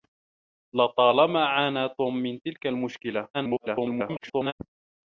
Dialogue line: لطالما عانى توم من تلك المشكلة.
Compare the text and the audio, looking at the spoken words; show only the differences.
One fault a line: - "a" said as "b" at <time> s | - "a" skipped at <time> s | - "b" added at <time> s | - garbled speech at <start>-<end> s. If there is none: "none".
- garbled speech at 3.3-4.5 s